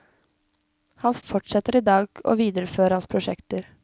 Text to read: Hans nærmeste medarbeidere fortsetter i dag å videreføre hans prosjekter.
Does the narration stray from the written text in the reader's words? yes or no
yes